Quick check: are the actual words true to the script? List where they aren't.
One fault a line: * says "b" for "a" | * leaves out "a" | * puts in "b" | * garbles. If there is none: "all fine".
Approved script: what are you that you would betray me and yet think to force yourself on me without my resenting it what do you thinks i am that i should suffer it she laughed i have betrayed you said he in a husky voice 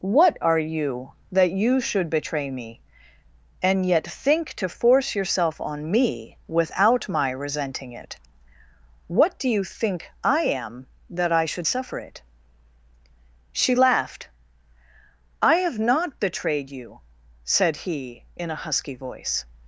* says "should" for "would"
* says "think" for "thinks"
* puts in "not"